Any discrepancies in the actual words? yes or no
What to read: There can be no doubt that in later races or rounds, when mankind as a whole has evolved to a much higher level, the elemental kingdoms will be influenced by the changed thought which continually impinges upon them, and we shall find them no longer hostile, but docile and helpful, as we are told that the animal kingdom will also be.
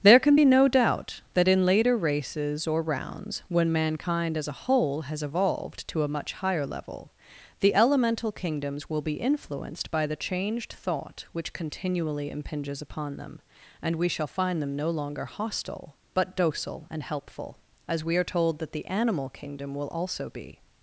no